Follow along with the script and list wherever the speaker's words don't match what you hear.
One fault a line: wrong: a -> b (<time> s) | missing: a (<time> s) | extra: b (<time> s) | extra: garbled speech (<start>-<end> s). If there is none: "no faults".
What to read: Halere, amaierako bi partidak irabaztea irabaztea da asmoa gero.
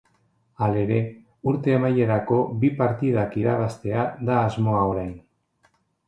extra: urte (1.5 s)
missing: irabaztea (4.0 s)
wrong: gero -> orain (4.9 s)